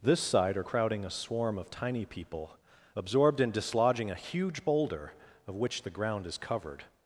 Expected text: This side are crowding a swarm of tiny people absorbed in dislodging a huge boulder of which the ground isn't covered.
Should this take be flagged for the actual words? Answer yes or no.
yes